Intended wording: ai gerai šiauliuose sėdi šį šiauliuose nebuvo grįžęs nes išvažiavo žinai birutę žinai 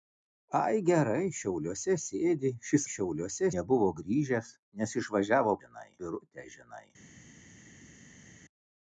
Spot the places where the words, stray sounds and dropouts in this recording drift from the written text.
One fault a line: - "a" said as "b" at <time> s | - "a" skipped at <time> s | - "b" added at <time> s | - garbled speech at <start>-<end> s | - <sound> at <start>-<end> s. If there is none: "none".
none